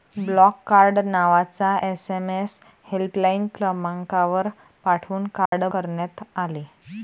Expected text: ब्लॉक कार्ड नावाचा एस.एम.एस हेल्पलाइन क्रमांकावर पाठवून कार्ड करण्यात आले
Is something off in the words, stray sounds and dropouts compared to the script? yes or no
yes